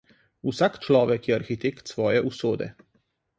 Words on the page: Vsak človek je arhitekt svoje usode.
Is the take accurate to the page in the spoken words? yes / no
yes